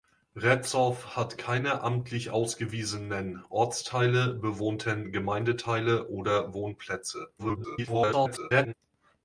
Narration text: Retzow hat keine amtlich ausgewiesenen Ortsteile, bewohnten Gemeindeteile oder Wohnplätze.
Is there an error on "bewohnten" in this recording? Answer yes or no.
no